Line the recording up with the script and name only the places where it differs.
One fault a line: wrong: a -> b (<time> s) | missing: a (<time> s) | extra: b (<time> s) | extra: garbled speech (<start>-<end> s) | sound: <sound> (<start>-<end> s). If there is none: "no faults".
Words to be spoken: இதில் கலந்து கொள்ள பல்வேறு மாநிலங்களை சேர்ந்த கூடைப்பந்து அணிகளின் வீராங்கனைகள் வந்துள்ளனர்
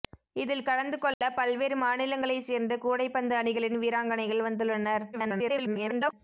sound: dropout (1.1-1.2 s)
extra: garbled speech (5.1-6.1 s)